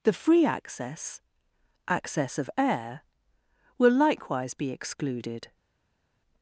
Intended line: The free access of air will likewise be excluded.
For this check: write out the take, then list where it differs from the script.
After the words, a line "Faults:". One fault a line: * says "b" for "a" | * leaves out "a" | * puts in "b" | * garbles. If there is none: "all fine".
The free access access of air will likewise be excluded.
Faults:
* puts in "access"